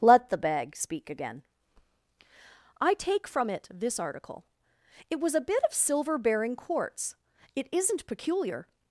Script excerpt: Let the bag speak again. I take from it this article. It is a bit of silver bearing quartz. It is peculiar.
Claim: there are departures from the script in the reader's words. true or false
true